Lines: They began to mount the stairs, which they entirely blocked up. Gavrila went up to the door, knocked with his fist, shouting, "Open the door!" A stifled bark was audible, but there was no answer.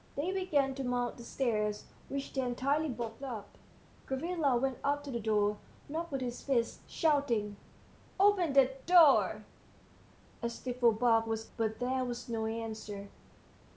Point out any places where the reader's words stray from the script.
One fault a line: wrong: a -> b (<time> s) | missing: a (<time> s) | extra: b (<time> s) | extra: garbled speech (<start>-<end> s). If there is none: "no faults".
missing: audible (11.4 s)